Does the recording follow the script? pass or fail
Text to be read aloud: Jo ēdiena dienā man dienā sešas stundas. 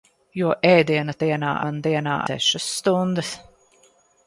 pass